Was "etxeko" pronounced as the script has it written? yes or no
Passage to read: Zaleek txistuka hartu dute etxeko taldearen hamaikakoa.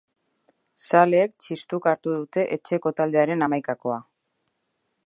yes